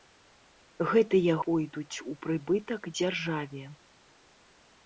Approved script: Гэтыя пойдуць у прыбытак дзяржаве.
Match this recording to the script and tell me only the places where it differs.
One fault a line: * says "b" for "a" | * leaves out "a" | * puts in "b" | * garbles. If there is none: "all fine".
all fine